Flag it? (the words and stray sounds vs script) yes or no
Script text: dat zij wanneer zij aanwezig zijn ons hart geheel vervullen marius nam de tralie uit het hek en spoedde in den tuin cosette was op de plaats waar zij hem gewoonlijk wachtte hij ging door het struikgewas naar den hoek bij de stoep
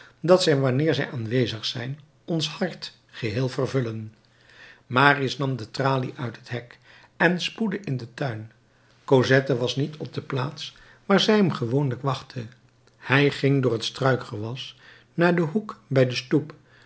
yes